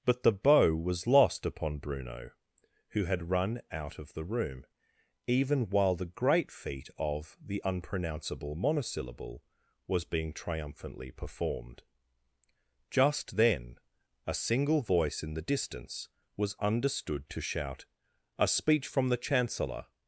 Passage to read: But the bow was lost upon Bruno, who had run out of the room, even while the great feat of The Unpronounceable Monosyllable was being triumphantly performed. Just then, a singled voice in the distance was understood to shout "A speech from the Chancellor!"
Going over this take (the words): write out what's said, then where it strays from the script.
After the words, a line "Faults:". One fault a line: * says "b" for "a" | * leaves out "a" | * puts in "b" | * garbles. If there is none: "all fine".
But the bow was lost upon Bruno, who had run out of the room, even while the great feat of The Unpronounceable Monosyllable was being triumphantly performed. Just then, a single voice in the distance was understood to shout "A speech from the Chancellor!"
Faults:
* says "single" for "singled"